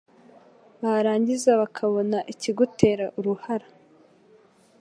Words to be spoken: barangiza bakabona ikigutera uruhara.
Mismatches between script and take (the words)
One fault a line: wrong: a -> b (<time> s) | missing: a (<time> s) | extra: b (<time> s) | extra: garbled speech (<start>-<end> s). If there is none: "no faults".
no faults